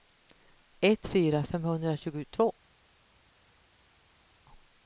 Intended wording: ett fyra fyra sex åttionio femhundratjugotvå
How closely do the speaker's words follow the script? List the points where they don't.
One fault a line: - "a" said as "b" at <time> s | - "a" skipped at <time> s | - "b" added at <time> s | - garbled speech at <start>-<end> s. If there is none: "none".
- "fyra sex åttionio" skipped at 1.4 s